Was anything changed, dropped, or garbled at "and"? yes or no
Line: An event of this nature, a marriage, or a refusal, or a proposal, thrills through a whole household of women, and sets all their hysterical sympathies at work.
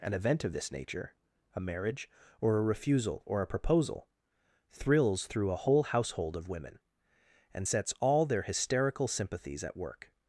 no